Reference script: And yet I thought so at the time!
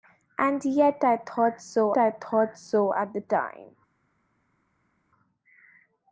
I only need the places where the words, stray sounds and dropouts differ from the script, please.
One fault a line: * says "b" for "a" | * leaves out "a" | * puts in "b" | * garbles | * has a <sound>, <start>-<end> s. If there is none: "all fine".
* puts in "I thought so"